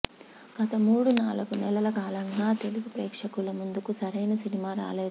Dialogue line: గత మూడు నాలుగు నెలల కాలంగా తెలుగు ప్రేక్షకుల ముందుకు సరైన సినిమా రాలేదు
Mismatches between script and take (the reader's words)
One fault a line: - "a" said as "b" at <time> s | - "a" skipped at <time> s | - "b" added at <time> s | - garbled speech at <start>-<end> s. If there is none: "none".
none